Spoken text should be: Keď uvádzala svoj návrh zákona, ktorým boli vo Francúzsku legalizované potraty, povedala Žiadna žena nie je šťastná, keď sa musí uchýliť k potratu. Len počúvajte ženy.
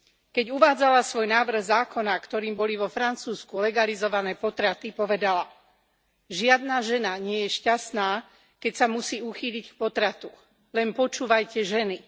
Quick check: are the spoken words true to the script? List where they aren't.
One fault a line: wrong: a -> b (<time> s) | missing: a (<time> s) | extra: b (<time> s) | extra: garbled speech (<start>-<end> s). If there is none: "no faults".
no faults